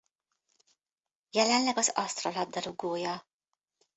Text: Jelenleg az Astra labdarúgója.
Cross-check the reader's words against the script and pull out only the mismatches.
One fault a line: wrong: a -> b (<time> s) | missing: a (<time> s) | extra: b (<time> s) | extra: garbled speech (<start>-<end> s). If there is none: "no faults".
no faults